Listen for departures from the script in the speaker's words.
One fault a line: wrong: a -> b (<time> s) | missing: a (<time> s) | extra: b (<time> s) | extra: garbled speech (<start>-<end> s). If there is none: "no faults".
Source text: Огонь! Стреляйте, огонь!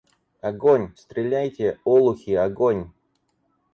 extra: олухи (1.8 s)